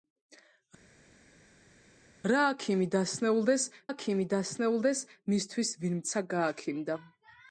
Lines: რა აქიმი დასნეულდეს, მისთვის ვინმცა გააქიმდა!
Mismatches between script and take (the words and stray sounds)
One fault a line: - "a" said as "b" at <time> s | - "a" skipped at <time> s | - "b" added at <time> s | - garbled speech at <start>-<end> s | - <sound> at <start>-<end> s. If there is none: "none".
- "აქიმი დასნეულდეს" added at 3.9 s